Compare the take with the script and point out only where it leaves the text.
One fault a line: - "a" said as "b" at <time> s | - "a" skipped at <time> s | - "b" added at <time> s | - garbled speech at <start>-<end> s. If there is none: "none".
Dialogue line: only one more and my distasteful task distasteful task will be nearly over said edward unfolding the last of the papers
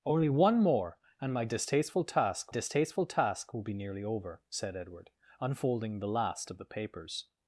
none